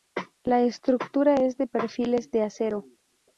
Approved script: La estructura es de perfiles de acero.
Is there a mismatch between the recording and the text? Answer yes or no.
no